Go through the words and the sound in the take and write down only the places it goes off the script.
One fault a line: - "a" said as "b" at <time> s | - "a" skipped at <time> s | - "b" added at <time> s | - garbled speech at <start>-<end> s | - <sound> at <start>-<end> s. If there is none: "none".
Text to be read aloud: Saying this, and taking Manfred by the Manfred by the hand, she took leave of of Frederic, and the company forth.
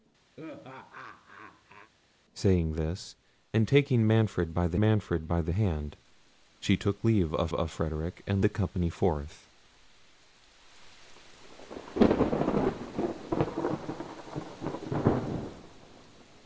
- laugh at 0.4-1.9 s